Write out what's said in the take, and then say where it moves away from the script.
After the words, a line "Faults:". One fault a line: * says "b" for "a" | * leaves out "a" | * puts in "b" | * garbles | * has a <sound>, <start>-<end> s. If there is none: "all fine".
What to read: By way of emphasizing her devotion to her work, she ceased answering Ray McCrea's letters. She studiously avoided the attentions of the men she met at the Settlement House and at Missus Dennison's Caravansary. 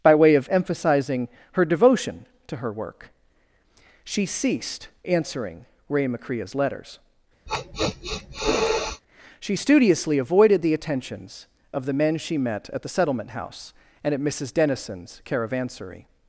By way of emphasizing her devotion to her work, she ceased answering Ray McCrea's letters. She studiously avoided the attentions of the men she met at the Settlement House and at Missus Dennison's Caravansary.
Faults:
* has a sniff, 7.5-9.0 s